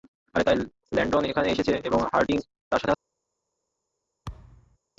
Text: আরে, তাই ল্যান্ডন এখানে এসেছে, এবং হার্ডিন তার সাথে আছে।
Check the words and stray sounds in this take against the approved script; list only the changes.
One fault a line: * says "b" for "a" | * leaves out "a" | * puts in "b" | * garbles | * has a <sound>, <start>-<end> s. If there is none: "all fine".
* has a thud, 4.3-4.8 s